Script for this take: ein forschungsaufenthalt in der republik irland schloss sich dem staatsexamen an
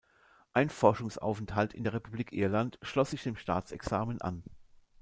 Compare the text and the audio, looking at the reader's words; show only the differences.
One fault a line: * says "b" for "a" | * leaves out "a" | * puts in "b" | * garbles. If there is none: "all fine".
all fine